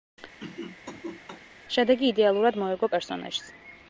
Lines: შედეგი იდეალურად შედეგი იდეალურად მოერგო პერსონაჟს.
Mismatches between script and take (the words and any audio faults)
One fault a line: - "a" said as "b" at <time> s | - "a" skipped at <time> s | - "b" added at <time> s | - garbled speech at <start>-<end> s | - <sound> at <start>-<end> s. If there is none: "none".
- cough at 0.4-1.4 s
- "შედეგი იდეალურად" skipped at 2.6 s